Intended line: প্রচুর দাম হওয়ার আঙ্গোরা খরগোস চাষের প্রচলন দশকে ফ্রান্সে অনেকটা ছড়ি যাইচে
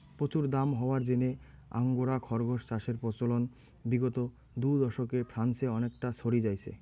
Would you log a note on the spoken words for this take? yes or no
yes